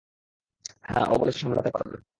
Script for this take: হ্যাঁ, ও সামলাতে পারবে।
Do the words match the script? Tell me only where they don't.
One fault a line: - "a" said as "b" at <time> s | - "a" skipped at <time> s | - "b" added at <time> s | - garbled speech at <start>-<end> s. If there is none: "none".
- "বলেছে" added at 1.2 s